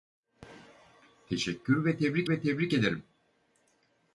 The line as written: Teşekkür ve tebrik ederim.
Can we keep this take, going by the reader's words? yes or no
no